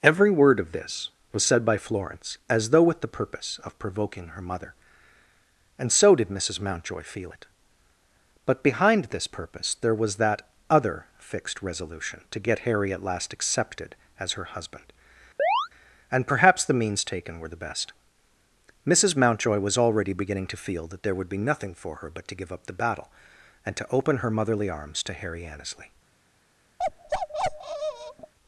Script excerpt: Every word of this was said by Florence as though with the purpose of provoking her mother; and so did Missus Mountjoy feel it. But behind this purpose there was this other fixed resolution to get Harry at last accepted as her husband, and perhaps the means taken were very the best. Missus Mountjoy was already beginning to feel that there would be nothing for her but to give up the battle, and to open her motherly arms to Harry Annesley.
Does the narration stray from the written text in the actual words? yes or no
yes